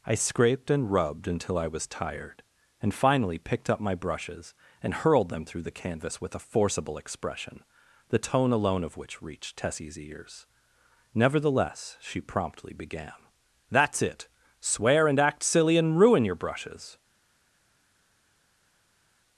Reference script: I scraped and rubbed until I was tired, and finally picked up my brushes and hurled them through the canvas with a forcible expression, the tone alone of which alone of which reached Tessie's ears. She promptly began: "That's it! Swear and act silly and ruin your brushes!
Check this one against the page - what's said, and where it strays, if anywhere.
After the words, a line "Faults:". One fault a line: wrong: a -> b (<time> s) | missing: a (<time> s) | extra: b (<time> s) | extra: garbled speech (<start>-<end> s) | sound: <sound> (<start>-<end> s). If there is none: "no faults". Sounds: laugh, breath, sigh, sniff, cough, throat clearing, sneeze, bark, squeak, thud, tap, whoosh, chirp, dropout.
I scraped and rubbed until I was tired, and finally picked up my brushes and hurled them through the canvas with a forcible expression, the tone alone of which reached Tessie's ears. Nevertheless she promptly began: "That's it! Swear and act silly and ruin your brushes!
Faults:
missing: alone of which (9.2 s)
extra: Nevertheless (11.1 s)